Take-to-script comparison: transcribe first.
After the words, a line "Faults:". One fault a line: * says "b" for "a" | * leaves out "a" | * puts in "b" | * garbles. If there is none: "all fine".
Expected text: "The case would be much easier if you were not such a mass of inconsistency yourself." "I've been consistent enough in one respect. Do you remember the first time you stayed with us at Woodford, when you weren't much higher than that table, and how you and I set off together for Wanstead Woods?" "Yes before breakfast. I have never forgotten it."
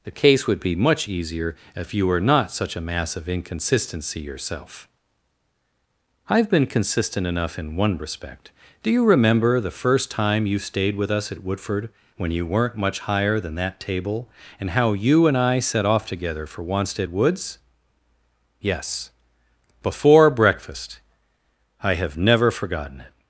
"The case would be much easier if you were not such a mass of inconsistency yourself." "I've been consistent enough in one respect. Do you remember the first time you stayed with us at Woodford, when you weren't much higher than that table, and how you and I set off together for Wanstead Woods?" "Yes before breakfast. I have never forgotten it."
Faults:
all fine